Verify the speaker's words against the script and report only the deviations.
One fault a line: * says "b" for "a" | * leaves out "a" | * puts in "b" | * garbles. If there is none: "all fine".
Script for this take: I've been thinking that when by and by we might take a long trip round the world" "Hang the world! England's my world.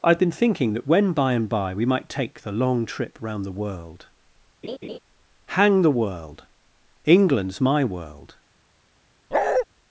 * says "the" for "a"